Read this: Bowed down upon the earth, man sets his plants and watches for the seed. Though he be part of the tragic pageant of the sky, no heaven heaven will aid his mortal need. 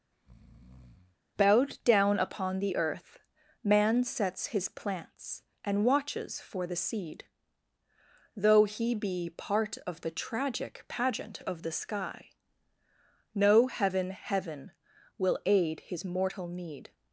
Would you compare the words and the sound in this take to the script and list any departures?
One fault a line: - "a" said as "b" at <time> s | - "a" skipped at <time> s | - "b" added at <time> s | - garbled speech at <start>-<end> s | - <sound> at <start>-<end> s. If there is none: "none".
- breath at 0.1-1.2 s